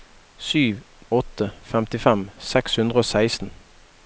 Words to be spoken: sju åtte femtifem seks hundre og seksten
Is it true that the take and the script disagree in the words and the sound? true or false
false